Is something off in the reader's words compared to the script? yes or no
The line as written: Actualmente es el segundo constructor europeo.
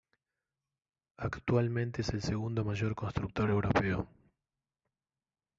yes